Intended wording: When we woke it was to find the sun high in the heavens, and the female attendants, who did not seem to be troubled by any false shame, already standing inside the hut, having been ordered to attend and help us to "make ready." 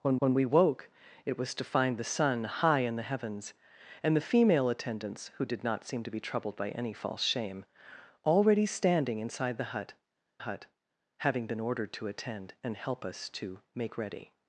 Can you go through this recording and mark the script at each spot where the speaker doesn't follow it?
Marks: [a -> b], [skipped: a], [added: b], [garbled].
When [added: when] we woke it was to find the sun high in the heavens, and the female attendants, who did not seem to be troubled by any false shame, already standing inside the hut, [added: hut] having been ordered to attend and help us to "make ready."